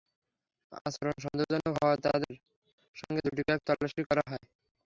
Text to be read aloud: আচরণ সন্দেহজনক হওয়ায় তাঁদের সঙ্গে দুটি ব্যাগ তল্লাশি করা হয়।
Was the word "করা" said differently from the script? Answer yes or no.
no